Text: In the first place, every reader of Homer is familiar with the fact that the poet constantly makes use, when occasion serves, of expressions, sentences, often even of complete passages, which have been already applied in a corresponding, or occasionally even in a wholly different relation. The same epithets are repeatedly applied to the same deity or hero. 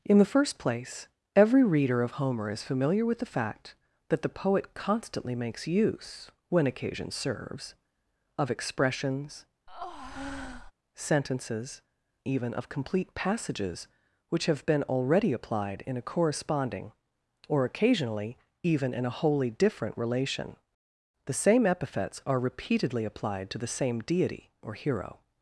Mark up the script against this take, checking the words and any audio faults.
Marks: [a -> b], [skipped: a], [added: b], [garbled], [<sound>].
In the first place, every reader of Homer is familiar with the fact that the poet constantly makes use, when occasion serves, of expressions, [breath] sentences, [skipped: often] even of complete passages, which have been already applied in a corresponding, or occasionally even in a wholly different relation. The same epithets are repeatedly applied to the same deity or hero.